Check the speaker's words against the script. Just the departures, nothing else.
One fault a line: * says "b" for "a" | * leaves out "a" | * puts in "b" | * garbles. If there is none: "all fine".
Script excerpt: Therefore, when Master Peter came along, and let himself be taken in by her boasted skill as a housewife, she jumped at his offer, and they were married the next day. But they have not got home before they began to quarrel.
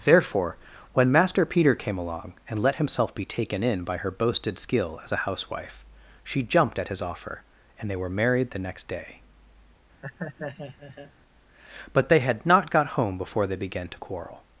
* says "had" for "have"